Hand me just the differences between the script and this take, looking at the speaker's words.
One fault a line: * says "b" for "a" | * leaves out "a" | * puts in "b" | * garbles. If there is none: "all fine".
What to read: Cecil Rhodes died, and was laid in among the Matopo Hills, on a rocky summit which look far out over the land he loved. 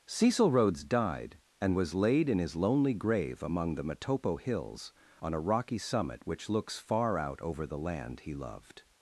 * puts in "his lonely grave"
* says "looks" for "look"